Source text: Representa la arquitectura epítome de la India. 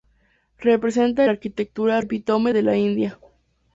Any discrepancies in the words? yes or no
no